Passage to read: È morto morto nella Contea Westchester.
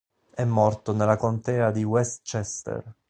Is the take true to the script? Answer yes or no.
no